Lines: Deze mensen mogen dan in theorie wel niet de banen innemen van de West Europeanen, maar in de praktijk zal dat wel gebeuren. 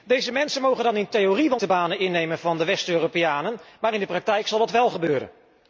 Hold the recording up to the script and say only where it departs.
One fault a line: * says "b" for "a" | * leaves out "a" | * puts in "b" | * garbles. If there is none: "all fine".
* leaves out "niet"